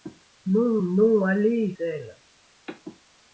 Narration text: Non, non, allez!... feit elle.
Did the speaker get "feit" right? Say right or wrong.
wrong